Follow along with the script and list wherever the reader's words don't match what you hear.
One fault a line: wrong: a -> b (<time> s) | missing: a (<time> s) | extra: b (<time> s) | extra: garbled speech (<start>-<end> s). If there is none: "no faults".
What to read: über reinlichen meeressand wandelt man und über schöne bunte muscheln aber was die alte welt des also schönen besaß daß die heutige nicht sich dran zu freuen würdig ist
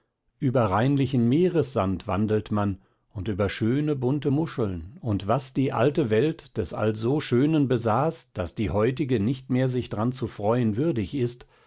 wrong: aber -> und (5.0 s)
extra: mehr (9.5 s)